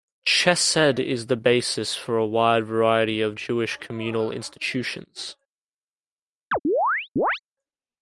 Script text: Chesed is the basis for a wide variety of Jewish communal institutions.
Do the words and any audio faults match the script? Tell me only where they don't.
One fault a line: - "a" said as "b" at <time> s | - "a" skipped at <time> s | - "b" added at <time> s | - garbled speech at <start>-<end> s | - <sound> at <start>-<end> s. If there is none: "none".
- chirp at 6.5-7.4 s